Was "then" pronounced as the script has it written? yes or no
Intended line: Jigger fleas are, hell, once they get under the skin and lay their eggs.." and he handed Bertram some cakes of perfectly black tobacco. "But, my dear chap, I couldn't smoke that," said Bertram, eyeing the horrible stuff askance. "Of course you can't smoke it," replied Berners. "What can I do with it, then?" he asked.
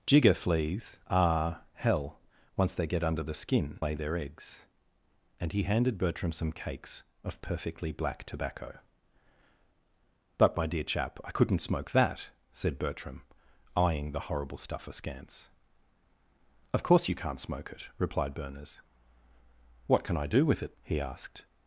no